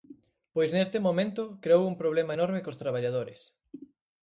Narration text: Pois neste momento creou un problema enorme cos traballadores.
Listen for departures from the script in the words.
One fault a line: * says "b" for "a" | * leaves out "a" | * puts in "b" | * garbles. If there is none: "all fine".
all fine